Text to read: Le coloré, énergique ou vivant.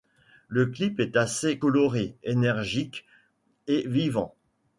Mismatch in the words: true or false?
true